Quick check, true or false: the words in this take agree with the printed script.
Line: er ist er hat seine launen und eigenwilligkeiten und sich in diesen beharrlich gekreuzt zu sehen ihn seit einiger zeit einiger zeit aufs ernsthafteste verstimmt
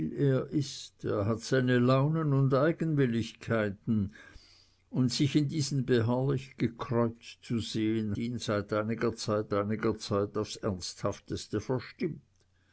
true